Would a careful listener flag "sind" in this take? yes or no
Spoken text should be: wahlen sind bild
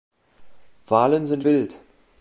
no